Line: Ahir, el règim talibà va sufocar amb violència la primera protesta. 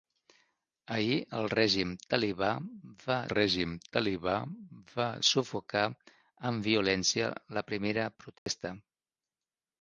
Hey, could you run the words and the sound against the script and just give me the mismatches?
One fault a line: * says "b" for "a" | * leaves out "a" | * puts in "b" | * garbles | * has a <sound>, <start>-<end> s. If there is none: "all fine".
* puts in "règim talibà va"
* has a dropout, 8.4-8.5 s